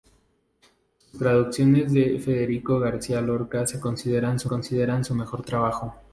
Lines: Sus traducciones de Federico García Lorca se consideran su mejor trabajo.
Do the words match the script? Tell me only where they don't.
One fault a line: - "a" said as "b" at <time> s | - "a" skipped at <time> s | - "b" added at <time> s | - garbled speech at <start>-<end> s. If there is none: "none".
- "consideran su" added at 4.5 s